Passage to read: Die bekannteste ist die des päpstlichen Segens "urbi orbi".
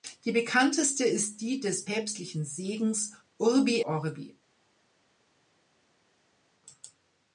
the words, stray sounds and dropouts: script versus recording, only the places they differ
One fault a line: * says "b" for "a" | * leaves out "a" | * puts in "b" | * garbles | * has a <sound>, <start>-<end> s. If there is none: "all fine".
all fine